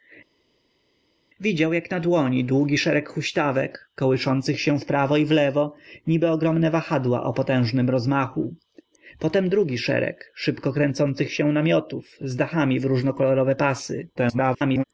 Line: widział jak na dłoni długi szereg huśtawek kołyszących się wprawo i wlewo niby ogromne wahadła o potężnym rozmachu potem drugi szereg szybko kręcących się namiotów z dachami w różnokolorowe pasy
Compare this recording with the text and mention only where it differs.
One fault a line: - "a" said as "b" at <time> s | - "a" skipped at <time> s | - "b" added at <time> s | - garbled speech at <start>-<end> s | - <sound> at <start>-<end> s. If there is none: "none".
- garbled speech at 14.2-14.8 s